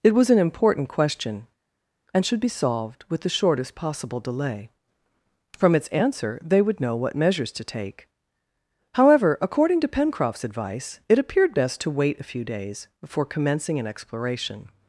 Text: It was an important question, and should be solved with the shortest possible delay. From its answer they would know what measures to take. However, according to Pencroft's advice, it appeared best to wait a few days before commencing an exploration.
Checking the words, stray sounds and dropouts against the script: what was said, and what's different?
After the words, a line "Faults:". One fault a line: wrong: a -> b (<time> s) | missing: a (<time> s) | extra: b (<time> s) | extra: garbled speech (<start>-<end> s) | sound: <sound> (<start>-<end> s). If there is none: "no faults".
It was an important question, and should be solved with the shortest possible delay. From its answer they would know what measures to take. However, according to Pencroft's advice, it appeared best to wait a few days before commencing an exploration.
Faults:
no faults